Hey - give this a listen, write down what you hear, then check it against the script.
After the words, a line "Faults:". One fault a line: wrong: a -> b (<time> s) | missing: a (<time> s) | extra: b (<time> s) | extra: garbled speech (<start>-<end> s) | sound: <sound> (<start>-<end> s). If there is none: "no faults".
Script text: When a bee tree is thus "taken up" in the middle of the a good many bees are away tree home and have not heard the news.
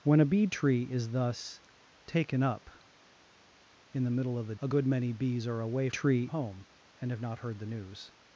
When a bee tree is thus "taken up" in the middle of the a good many bees are away tree home and have not heard the news.
Faults:
no faults